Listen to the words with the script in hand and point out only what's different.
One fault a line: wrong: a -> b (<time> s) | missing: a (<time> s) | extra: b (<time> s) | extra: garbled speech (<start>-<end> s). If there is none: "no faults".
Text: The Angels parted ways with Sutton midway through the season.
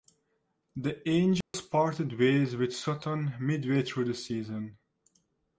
no faults